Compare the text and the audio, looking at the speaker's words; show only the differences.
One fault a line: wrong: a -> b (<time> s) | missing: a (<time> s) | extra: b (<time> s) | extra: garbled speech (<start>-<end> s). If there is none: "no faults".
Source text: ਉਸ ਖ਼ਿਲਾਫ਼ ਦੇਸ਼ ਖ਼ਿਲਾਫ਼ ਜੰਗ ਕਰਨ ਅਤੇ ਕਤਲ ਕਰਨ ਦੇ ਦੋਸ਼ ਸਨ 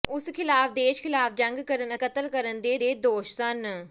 missing: ਅਤੇ (1.9 s)
extra: ਦੇ (2.8 s)